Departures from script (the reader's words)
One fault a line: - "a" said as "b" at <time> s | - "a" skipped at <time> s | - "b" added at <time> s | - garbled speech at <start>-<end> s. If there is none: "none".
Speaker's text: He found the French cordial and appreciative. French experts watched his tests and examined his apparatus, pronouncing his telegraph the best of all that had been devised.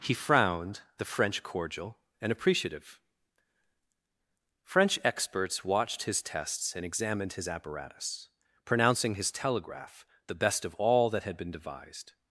- "found" said as "frowned" at 0.1 s